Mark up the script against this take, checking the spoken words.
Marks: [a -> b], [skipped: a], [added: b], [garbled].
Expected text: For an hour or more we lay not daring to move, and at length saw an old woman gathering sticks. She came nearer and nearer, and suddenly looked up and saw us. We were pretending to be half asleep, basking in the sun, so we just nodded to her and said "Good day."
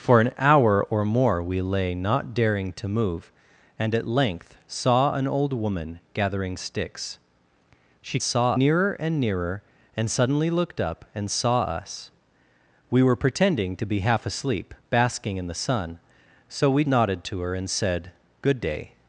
For an hour or more we lay not daring to move, and at length saw an old woman gathering sticks. She [came -> saw] nearer and nearer, and suddenly looked up and saw us. We were pretending to be half asleep, basking in the sun, so we [skipped: just] nodded to her and said "Good day."